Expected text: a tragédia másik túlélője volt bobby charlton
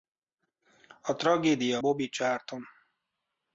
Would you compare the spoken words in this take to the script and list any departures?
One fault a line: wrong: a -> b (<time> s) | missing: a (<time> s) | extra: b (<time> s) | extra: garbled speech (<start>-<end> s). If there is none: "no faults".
missing: másik túlélője volt (1.8 s)